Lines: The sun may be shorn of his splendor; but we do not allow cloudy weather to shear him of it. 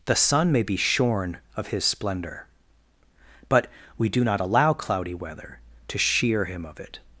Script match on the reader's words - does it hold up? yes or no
yes